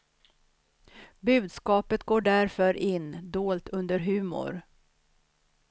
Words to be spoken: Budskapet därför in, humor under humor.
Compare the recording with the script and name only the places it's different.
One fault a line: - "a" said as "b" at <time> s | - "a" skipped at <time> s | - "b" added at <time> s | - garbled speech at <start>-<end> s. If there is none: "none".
- "går" added at 2.0 s
- "humor" said as "dolt" at 3.3 s